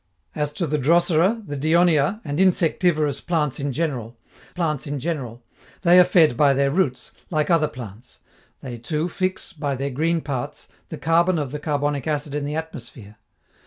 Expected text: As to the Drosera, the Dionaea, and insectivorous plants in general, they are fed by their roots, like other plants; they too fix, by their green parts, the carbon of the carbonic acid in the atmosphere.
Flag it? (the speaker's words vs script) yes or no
yes